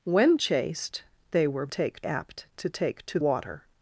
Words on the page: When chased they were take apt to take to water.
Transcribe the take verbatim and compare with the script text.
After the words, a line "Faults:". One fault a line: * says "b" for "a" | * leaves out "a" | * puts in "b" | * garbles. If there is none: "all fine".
When chased they were take apt to take to water.
Faults:
all fine